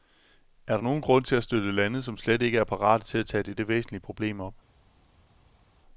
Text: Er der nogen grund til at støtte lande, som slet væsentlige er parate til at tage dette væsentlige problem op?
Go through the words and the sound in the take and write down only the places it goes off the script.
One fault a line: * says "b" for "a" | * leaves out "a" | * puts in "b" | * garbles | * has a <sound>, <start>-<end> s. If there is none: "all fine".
* says "ikke" for "væsentlige"